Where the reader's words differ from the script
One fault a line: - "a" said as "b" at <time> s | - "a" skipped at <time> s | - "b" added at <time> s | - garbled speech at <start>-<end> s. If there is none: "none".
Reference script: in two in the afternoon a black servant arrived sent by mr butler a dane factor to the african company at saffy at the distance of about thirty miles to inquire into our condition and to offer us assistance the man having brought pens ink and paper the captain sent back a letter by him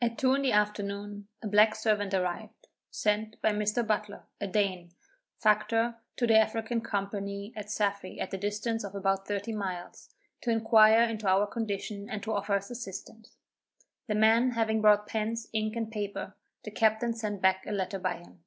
- "in" said as "at" at 0.0 s